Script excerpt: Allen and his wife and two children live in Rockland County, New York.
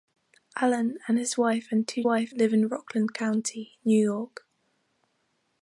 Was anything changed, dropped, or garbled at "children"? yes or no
yes